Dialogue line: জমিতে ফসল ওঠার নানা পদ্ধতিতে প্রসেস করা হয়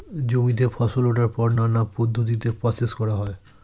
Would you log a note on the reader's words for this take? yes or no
yes